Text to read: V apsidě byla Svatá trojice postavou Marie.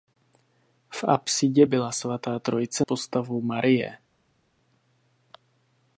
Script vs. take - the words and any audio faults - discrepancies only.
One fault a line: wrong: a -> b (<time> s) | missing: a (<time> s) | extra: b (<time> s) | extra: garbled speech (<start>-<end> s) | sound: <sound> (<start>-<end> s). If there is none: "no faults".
no faults